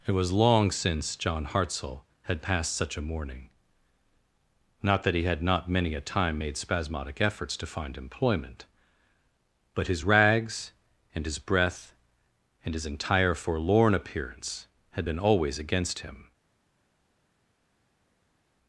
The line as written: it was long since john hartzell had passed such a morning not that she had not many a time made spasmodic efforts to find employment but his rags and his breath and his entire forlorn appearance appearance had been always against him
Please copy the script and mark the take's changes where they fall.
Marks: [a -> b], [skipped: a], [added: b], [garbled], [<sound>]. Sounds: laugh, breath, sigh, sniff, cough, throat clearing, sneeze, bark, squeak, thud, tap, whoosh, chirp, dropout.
it was long since john hartzell had passed such a morning not that [she -> he] had not many a time made spasmodic efforts to find employment but his rags and his breath and his entire forlorn appearance [skipped: appearance] had been always against him